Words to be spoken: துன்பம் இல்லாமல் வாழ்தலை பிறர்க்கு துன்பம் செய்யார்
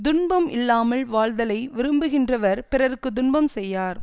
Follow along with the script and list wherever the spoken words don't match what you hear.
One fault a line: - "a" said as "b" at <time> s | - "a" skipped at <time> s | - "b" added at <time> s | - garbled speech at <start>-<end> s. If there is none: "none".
- "விரும்புகின்றவர்" added at 1.8 s